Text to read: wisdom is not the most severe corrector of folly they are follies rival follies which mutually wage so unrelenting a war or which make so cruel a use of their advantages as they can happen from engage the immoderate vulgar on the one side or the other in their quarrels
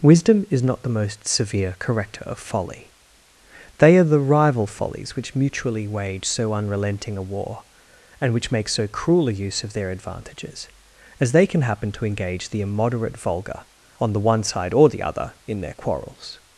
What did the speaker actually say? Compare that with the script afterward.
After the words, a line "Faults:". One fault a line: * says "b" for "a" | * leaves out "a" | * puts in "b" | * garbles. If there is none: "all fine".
wisdom is not the most severe corrector of folly they are the rival follies which mutually wage so unrelenting a war and which make so cruel a use of their advantages as they can happen to engage the immoderate vulgar on the one side or the other in their quarrels
Faults:
* says "the" for "follies"
* says "and" for "or"
* says "to" for "from"